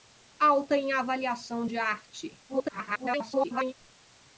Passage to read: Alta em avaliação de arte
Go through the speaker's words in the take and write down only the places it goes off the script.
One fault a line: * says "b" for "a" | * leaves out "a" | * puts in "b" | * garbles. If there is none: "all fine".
* garbles